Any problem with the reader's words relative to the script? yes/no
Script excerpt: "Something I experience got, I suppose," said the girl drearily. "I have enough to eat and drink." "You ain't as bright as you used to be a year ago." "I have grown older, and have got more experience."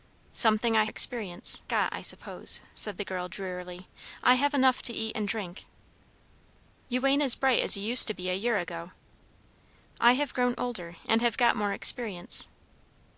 no